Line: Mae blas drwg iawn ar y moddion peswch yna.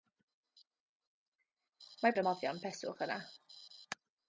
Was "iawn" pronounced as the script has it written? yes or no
no